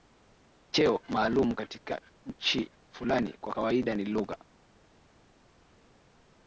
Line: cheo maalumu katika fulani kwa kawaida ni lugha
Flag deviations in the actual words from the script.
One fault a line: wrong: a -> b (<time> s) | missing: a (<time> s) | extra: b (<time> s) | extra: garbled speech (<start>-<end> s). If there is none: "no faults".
extra: nchi (2.2 s)